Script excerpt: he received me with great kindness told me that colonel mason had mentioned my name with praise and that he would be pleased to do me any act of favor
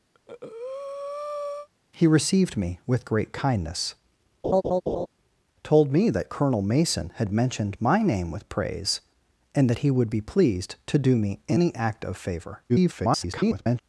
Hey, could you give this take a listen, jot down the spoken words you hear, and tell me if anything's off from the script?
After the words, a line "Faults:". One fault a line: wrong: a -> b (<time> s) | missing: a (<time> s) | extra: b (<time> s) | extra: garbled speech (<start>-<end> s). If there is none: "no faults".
he received me with great kindness told me that colonel mason had mentioned my name with praise and that he would be pleased to do me any act of favor [garbled]
Faults:
extra: garbled speech (12.7-13.8 s)